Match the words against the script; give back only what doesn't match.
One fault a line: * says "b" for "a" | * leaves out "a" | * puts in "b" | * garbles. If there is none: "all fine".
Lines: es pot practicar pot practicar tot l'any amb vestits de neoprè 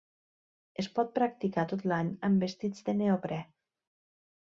* leaves out "pot practicar"